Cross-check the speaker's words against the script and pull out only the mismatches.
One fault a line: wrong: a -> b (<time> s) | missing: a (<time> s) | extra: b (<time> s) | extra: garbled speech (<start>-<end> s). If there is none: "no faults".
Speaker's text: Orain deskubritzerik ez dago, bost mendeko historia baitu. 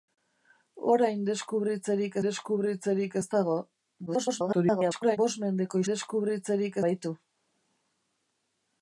extra: deskubritzerik (2.2 s)
extra: garbled speech (4.1-5.2 s)
wrong: historia -> deskubritzerik (5.9 s)